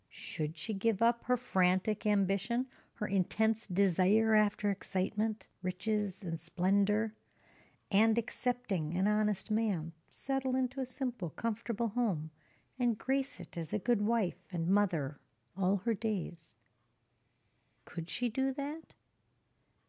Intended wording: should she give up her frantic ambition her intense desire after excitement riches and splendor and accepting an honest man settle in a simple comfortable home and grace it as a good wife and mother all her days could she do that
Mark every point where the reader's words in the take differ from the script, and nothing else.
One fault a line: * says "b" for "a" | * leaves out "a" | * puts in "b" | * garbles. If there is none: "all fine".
all fine